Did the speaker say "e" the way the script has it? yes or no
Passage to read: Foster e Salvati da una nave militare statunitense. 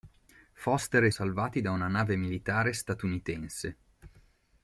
yes